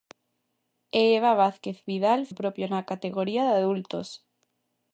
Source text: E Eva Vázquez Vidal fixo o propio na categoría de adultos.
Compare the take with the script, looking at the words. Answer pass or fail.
fail